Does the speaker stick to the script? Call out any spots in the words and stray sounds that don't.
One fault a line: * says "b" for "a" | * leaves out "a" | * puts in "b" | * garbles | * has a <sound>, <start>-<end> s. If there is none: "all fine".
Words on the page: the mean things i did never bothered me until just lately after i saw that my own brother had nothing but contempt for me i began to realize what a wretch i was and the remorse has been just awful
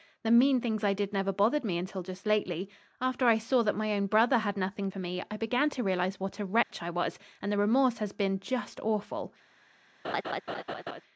* leaves out "but contempt"
* has a dropout, 6.6-6.7 s
* has a laugh, 10.0-11.0 s